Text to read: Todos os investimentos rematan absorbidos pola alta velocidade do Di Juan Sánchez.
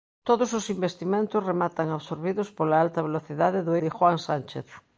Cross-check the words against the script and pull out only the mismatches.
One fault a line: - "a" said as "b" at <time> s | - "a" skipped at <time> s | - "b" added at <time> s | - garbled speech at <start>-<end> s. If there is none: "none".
none